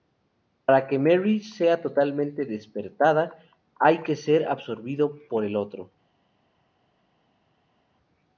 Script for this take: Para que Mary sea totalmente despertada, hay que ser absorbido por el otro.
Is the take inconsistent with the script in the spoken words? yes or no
no